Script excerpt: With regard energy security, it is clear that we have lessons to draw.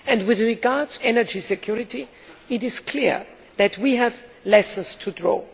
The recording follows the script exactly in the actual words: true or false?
true